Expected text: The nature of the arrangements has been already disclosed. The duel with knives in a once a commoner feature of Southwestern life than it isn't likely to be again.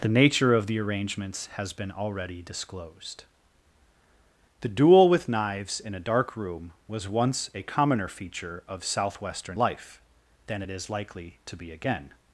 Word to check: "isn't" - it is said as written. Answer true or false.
false